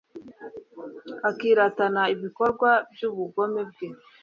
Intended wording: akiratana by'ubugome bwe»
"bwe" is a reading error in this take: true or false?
false